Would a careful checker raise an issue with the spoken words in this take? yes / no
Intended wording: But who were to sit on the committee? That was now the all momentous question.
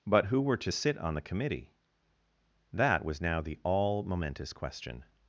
no